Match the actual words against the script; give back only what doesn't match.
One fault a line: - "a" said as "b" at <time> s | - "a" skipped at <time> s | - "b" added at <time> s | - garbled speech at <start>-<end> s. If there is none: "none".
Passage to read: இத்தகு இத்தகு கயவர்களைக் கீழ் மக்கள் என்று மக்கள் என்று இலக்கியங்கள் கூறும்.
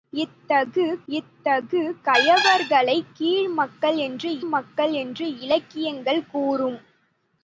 none